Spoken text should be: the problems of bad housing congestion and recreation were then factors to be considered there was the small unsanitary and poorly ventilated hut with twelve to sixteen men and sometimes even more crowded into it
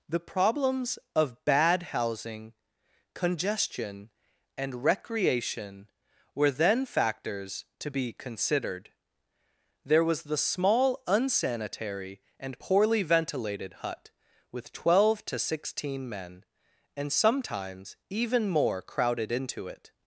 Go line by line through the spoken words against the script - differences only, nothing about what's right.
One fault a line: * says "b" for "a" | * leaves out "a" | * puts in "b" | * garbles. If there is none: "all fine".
all fine